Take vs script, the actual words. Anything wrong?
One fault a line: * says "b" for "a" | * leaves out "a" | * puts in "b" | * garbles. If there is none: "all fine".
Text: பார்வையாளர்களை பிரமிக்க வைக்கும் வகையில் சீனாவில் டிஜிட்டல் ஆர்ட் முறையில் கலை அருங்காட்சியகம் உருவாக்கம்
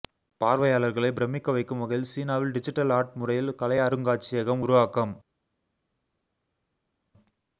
all fine